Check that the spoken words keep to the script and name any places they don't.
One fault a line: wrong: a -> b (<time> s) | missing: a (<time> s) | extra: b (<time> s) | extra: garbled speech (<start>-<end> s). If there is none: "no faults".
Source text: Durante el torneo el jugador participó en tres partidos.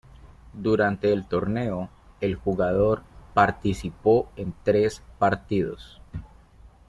no faults